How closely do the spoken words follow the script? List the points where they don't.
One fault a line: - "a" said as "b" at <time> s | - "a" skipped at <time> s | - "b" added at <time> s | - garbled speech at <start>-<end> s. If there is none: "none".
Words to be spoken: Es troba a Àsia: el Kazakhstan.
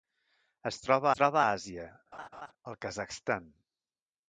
- "troba" added at 1.2 s